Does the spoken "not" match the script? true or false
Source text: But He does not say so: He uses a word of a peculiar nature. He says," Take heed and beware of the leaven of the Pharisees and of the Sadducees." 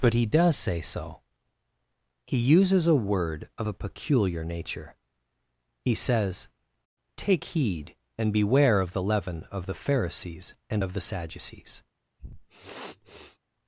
false